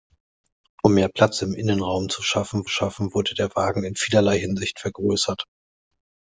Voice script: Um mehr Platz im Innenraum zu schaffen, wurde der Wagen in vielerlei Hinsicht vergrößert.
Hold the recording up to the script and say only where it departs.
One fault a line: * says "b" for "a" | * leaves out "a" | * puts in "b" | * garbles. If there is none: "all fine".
* puts in "schaffen"